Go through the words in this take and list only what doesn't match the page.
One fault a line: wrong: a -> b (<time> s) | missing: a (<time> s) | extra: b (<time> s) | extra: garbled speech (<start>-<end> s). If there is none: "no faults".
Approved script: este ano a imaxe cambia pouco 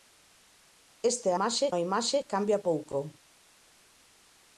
wrong: ano -> imaxe (1.4 s)